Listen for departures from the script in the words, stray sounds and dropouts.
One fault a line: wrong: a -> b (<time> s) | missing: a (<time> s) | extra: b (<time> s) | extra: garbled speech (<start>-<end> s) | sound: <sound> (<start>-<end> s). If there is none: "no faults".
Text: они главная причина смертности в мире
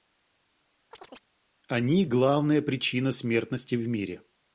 sound: chirp (0.9-1.3 s)